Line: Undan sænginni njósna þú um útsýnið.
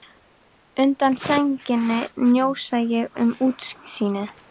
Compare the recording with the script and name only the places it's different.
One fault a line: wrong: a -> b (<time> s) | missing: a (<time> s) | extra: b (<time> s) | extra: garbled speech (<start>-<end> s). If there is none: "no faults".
wrong: þú -> ég (3.0 s)